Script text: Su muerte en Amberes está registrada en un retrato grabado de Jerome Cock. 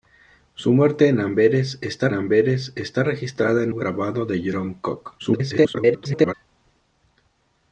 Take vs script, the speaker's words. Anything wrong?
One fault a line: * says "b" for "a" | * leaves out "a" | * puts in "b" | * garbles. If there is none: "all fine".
* puts in "Amberes está"
* leaves out "un retrato"
* garbles